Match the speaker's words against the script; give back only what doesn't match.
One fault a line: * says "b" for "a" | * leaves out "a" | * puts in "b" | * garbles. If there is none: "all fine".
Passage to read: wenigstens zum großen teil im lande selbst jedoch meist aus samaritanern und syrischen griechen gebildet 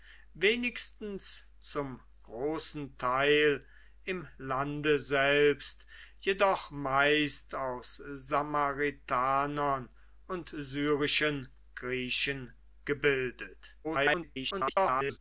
* garbles